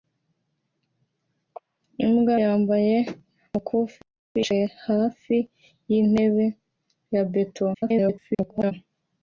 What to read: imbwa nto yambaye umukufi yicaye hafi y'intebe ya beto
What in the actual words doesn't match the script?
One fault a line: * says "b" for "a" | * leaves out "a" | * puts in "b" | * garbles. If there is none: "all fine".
* leaves out "nto"
* garbles